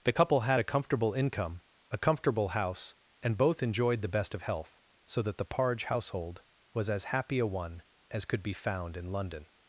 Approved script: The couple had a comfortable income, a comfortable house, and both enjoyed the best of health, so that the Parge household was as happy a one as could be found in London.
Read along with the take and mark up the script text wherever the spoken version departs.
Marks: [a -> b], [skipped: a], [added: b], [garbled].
The couple had a comfortable income, a comfortable house, and both enjoyed the best of health, so that the Parge household was as happy a one as could be found in London.